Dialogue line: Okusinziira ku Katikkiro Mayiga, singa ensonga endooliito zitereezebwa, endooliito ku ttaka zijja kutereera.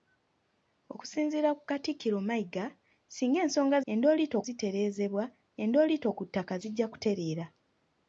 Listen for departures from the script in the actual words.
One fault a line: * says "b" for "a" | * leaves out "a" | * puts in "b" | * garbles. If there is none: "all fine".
all fine